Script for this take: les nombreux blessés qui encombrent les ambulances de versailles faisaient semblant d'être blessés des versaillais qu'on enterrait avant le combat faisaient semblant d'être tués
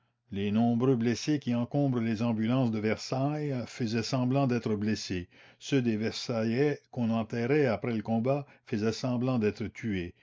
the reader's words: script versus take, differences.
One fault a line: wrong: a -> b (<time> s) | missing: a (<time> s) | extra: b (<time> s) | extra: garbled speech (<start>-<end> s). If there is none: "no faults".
extra: ceux (5.6 s)
wrong: avant -> après (7.7 s)